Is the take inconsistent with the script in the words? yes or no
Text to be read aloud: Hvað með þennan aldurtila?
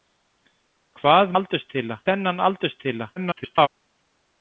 yes